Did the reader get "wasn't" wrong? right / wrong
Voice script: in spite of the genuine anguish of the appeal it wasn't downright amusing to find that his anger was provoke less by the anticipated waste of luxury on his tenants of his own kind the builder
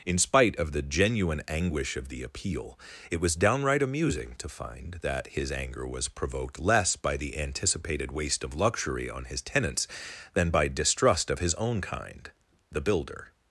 wrong